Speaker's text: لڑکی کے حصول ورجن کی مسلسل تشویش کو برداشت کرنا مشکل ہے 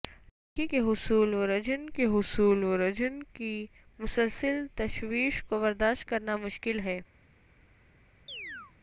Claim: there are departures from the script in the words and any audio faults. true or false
true